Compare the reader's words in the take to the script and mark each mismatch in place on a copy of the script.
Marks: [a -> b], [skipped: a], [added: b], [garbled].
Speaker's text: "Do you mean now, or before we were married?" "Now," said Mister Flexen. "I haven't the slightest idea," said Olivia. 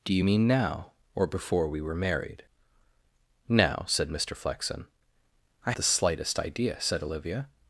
"Do you mean now, or before we were married?" "Now," said Mister Flexen. "I [skipped: haven't] the slightest idea," said Olivia.